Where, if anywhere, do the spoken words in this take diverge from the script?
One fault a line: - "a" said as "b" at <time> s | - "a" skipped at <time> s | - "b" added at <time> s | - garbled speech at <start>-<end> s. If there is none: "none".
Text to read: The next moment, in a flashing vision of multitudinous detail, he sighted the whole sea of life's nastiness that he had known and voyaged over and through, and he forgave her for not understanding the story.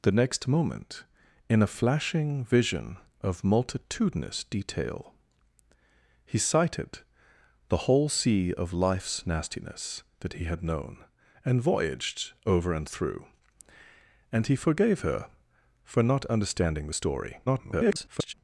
- garbled speech at 17.5-18.3 s